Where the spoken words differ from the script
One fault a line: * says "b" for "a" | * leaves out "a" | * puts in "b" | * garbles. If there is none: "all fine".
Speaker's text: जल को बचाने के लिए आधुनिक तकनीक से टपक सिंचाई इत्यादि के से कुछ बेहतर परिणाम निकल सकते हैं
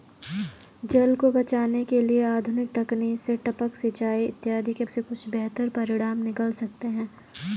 all fine